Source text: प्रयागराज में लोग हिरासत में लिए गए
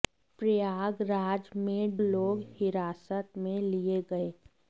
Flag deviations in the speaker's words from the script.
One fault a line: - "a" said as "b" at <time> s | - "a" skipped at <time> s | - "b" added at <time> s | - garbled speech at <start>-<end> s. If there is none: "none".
none